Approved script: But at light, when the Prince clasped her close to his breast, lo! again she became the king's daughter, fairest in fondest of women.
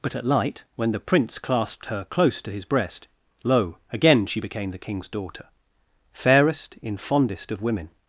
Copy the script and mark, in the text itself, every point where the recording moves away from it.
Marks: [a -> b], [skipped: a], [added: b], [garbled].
But at light, when the Prince clasped her close to his breast, lo! again she became the king's daughter, fairest in fondest of women.